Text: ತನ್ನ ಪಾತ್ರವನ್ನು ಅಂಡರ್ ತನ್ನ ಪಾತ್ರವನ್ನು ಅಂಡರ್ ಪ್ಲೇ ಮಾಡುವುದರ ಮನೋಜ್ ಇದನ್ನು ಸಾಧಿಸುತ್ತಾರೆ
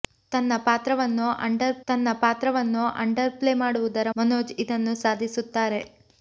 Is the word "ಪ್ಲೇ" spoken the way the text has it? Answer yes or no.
yes